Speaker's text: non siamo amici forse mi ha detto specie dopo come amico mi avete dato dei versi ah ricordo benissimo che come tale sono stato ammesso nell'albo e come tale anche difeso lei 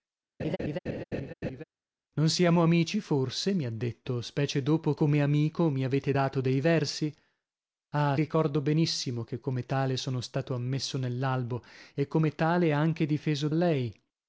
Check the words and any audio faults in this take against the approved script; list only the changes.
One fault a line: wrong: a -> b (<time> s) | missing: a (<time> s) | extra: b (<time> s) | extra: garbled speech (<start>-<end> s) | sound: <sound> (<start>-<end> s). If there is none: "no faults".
sound: laugh (0.4-1.6 s)